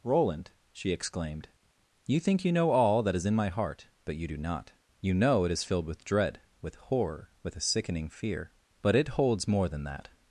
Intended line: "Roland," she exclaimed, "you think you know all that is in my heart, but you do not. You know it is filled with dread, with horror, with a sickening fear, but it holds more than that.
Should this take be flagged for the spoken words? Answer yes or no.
no